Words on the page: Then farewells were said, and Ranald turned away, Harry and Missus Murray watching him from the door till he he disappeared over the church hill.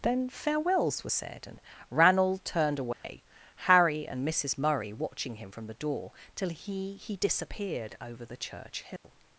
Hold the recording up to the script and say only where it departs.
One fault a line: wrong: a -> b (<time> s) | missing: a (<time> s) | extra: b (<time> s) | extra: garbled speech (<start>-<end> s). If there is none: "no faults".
no faults